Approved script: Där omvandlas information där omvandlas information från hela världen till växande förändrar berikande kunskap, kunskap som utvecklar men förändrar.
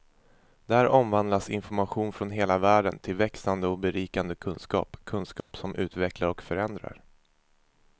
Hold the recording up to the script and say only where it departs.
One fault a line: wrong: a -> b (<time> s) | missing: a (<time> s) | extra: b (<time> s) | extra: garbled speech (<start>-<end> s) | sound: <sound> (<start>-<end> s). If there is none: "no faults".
missing: där omvandlas information (2.1 s)
wrong: förändrar -> och (3.7 s)
sound: dropout (5.4-5.5 s)
wrong: men -> och (6.3 s)